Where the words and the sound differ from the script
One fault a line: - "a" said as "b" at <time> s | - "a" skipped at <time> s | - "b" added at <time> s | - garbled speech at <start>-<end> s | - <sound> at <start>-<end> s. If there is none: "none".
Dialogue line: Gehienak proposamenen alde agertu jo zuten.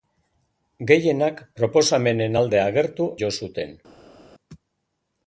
none